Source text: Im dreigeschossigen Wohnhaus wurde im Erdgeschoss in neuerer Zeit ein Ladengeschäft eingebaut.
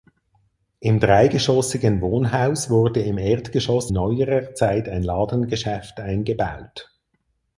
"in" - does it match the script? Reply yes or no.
no